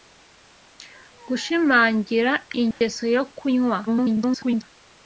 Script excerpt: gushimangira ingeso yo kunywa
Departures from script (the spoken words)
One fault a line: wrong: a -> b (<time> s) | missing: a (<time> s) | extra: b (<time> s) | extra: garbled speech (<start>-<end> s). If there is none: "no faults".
extra: garbled speech (3.9-4.6 s)